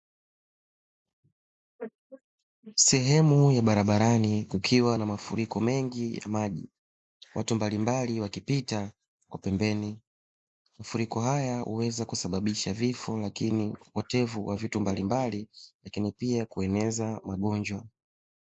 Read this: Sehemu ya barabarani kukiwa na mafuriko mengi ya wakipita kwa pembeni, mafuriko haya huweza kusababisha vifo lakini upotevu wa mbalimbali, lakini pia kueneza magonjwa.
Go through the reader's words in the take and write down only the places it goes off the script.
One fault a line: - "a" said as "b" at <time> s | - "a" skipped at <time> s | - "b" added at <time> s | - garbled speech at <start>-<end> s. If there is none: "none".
- "maji watu mbalimbali" added at 6.3 s
- "vitu" added at 14.6 s